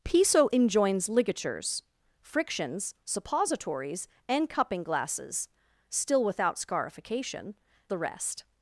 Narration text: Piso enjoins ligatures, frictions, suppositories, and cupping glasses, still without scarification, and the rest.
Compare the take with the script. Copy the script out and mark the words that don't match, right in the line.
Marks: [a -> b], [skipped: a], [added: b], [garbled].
Piso enjoins ligatures, frictions, suppositories, and cupping glasses, still without scarification, [skipped: and] the rest.